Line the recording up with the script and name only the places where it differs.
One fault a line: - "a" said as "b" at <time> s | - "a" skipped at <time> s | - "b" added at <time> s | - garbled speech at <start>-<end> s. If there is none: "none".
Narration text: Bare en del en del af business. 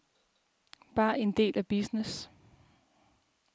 - "en del" skipped at 1.6 s